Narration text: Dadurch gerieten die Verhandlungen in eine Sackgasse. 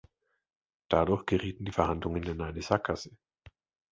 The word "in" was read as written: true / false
true